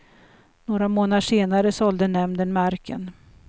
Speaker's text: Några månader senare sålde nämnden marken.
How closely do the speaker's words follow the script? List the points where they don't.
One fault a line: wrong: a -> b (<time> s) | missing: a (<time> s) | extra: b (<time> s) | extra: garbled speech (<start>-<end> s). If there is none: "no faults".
no faults